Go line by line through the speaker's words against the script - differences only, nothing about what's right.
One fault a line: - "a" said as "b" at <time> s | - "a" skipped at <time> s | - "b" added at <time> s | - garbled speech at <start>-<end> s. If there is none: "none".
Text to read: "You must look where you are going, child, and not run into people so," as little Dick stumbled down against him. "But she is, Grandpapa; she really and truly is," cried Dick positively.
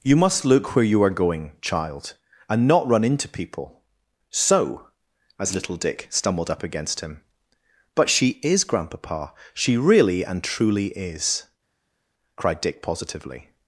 - "down" said as "up" at 6.5 s